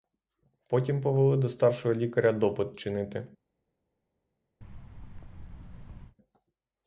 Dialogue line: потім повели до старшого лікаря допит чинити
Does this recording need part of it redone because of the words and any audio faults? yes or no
yes